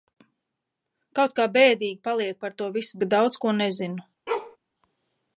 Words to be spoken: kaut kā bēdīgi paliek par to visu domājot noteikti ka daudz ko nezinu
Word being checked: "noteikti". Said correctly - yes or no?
no